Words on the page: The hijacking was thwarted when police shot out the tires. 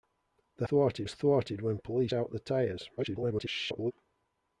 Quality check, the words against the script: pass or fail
fail